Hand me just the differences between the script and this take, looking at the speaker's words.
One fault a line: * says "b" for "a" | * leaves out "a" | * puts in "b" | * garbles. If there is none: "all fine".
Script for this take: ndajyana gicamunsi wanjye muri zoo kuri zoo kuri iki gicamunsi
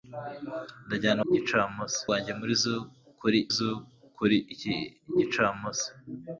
all fine